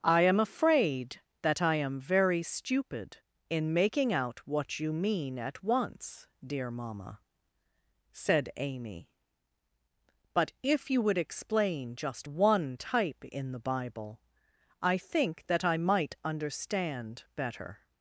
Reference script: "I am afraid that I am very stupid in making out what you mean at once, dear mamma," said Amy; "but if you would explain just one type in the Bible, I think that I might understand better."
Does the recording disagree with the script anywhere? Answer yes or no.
no